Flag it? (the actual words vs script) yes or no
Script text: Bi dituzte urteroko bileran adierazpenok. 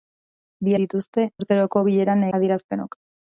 no